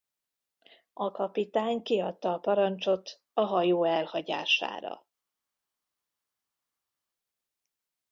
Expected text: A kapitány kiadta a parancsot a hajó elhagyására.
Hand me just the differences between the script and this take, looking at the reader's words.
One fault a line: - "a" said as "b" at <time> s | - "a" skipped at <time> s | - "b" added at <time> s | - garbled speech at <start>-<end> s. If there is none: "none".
none